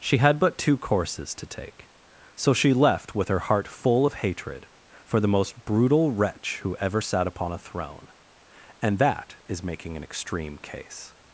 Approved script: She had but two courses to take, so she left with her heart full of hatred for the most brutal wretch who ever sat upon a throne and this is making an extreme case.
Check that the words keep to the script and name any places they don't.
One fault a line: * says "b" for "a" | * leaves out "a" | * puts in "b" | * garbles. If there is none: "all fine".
* says "that" for "this"